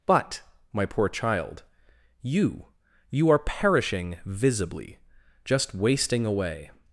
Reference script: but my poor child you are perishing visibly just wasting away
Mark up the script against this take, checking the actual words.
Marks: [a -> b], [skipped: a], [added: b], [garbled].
but my poor child you [added: you] are perishing visibly just wasting away